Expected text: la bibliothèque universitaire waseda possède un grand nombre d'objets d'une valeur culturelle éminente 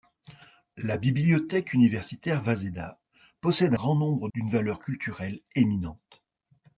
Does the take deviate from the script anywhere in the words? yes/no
yes